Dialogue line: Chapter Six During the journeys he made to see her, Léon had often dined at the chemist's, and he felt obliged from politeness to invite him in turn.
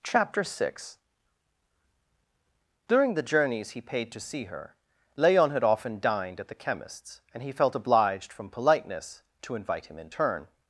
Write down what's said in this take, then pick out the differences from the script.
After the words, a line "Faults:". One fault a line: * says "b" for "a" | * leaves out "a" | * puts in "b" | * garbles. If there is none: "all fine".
Chapter Six During the journeys he paid to see her, Léon had often dined at the chemist's, and he felt obliged from politeness to invite him in turn.
Faults:
* says "paid" for "made"